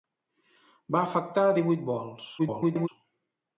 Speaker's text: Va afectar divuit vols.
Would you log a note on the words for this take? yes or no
yes